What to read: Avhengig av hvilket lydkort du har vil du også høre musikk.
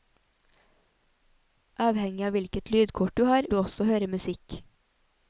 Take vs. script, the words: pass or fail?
fail